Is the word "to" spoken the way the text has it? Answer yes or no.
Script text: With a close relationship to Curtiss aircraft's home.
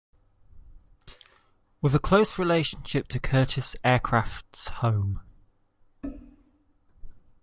yes